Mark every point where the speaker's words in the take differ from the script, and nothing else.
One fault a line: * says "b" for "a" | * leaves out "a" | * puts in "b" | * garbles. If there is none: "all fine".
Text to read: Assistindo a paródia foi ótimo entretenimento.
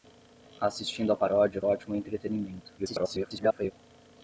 * leaves out "foi"
* garbles